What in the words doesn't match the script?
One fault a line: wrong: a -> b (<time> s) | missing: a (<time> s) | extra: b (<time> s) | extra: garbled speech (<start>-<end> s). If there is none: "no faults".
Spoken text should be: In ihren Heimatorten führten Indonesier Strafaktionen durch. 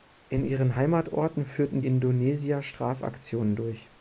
no faults